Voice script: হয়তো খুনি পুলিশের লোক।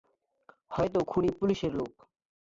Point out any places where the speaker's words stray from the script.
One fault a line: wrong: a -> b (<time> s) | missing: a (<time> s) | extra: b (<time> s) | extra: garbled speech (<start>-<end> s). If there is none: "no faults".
no faults